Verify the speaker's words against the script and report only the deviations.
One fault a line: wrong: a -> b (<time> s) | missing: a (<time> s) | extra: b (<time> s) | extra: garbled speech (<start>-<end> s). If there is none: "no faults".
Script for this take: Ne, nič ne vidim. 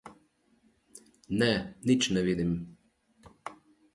no faults